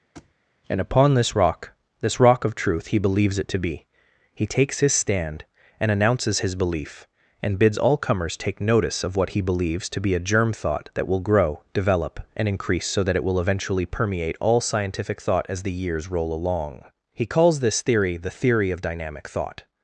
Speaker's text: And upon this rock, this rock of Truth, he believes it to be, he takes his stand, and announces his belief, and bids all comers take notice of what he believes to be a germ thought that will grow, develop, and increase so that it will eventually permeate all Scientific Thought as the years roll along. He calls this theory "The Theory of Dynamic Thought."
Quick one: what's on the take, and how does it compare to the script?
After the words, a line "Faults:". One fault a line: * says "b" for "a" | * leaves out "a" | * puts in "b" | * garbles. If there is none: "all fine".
And upon this rock, this rock of Truth, he believes it to be, he takes his stand, and announces his belief, and bids all comers take notice of what he believes to be a germ thought that will grow, develop, and increase so that it will eventually permeate all Scientific Thought as the years roll along. He calls this theory "The Theory of Dynamic Thought."
Faults:
all fine